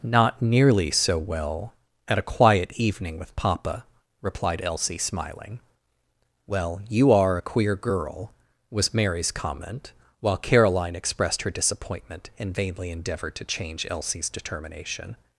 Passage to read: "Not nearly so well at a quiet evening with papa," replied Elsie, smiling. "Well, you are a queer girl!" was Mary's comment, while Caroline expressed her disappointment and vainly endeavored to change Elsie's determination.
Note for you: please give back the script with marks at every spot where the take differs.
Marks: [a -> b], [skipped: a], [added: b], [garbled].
"Not nearly so well at a quiet evening with papa," replied Elsie, smiling. "Well, you are a queer girl!" was Mary's comment, while Caroline expressed her disappointment and vainly endeavored to change Elsie's determination.